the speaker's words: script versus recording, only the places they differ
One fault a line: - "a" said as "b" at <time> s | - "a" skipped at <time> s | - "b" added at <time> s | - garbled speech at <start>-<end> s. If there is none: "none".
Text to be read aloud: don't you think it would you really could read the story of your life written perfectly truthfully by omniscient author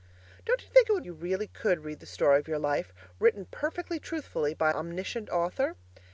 none